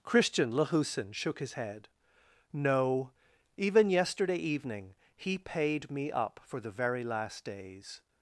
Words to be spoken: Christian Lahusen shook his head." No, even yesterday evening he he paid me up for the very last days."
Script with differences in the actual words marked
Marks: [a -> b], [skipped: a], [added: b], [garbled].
Christian Lahusen shook his head." No, even yesterday evening he [skipped: he] paid me up for the very last days."